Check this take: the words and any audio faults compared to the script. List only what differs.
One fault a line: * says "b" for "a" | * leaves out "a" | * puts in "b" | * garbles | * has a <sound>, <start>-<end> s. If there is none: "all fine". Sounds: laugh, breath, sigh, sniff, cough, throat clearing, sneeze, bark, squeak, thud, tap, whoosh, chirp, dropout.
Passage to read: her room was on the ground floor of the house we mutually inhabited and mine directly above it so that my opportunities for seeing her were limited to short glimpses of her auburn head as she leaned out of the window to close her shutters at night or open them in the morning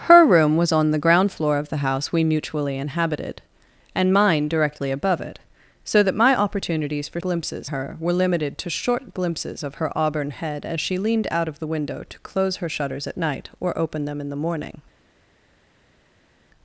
* says "glimpses" for "seeing"